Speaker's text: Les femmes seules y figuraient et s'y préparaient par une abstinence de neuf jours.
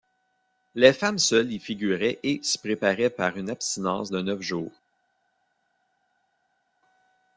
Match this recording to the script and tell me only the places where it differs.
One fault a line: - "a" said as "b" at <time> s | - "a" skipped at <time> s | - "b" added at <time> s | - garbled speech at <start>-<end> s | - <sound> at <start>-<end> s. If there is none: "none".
none